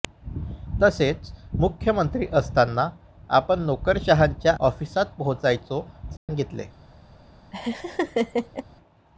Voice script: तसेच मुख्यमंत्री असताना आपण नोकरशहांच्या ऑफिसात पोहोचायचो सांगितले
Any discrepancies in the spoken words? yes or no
no